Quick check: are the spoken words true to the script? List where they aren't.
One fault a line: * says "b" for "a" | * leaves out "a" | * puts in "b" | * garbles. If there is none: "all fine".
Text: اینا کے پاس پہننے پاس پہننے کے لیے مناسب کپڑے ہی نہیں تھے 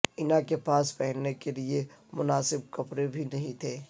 * leaves out "پاس پہننے"
* says "بھی" for "ہی"